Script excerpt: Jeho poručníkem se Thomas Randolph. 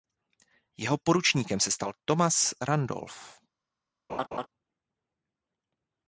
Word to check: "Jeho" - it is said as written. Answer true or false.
true